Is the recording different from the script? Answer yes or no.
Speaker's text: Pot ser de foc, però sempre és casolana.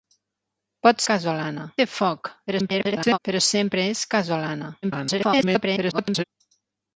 yes